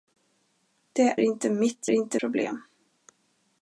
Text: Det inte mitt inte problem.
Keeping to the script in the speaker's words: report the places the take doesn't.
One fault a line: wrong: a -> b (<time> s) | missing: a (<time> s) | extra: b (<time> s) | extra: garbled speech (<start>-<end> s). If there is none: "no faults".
no faults